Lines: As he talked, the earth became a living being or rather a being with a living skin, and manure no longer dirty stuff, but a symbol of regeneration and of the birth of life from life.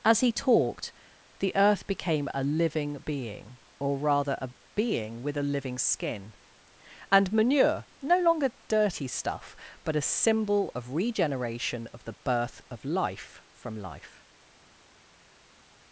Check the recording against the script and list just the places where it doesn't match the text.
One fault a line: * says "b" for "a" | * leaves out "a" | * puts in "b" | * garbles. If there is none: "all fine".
* leaves out "and"